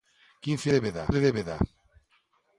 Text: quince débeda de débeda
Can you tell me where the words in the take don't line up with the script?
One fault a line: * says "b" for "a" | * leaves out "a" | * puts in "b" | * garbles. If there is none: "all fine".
all fine